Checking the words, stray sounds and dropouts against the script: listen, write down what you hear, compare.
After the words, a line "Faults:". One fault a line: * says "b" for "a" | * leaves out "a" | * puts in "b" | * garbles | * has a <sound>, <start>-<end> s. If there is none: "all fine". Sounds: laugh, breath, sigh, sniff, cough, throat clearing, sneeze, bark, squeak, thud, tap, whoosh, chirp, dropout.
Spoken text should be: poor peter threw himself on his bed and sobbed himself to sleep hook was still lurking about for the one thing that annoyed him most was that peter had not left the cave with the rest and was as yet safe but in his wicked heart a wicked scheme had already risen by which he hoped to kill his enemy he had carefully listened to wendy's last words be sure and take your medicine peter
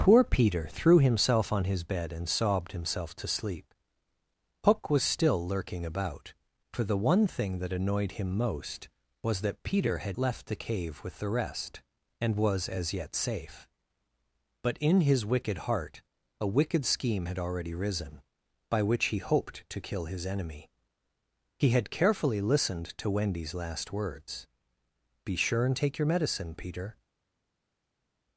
poor peter threw himself on his bed and sobbed himself to sleep hook was still lurking about for the one thing that annoyed him most was that peter had left the cave with the rest and was as yet safe but in his wicked heart a wicked scheme had already risen by which he hoped to kill his enemy he had carefully listened to wendy's last words be sure and take your medicine peter
Faults:
* leaves out "not"